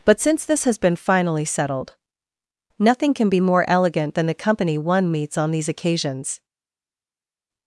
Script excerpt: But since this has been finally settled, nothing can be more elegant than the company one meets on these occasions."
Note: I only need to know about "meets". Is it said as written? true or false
true